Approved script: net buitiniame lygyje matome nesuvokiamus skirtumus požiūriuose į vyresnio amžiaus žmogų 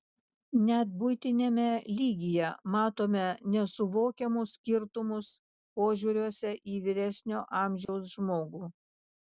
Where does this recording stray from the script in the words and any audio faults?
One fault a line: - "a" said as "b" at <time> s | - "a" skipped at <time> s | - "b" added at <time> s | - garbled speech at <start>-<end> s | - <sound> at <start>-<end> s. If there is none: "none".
- dropout at 7.9-7.9 s